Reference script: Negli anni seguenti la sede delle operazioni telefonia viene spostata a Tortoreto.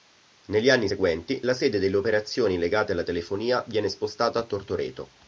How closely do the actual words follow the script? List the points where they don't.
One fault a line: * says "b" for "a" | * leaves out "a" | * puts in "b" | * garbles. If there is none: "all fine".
* puts in "legate alla"